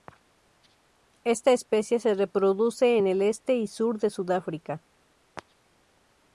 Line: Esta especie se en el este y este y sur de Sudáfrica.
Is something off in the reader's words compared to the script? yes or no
yes